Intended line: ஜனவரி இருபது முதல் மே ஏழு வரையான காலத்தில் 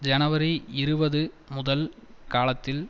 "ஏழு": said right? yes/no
no